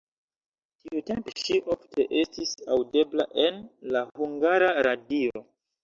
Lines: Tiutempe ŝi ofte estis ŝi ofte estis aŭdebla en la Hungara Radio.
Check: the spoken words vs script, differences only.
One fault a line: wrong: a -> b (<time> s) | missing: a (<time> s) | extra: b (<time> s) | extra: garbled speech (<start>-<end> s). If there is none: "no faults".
missing: ŝi ofte estis (2.5 s)